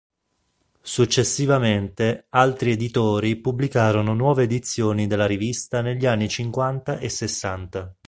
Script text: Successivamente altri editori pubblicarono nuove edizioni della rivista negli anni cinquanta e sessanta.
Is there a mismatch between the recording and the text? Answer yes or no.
no